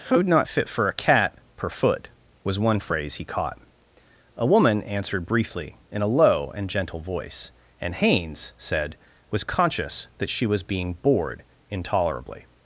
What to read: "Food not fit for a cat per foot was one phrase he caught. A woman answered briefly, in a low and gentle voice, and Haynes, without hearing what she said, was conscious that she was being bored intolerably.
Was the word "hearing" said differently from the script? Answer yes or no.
yes